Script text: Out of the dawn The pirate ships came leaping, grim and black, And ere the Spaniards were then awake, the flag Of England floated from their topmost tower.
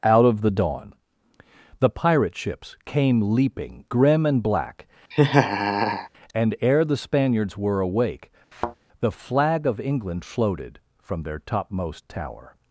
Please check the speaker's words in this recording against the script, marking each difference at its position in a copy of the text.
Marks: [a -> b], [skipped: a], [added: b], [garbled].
Out of the dawn The pirate ships came leaping, grim and black, And ere the Spaniards were [skipped: then] awake, the flag Of England floated from their topmost tower.